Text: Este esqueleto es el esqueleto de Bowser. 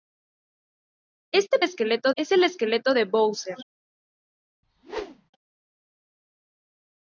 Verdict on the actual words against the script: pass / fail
pass